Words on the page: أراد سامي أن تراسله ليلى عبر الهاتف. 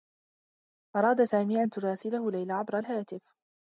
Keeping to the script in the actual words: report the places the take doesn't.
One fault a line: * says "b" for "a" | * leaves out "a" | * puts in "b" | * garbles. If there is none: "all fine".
all fine